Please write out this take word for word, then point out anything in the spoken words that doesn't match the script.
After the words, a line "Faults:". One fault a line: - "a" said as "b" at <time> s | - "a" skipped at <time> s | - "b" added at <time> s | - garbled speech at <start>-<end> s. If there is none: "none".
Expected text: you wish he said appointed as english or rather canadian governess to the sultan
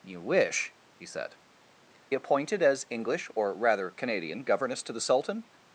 you wish he said appointed as english or rather canadian governess to the sultan
Faults:
none